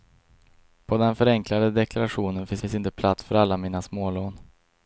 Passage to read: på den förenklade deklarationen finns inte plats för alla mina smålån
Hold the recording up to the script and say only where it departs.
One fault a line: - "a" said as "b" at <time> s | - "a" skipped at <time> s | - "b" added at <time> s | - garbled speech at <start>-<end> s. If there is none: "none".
- "finns" added at 2.6 s